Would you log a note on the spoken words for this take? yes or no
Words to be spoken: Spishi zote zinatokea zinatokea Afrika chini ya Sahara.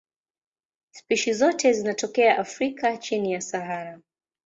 yes